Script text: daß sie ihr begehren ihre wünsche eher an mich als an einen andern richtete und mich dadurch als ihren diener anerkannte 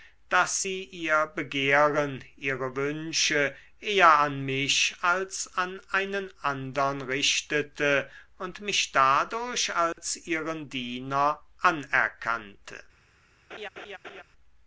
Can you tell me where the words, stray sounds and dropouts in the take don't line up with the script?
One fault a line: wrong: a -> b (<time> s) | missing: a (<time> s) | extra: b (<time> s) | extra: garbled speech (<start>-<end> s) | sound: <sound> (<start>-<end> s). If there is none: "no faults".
sound: dropout (9.9-10.0 s)
sound: laugh (13.5-14.2 s)